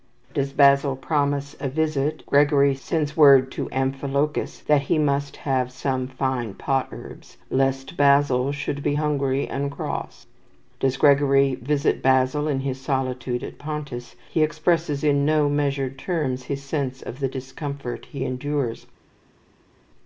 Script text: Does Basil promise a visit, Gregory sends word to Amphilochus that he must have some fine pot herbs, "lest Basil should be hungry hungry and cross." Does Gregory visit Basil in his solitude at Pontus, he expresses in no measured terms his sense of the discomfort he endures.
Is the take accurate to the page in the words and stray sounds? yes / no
no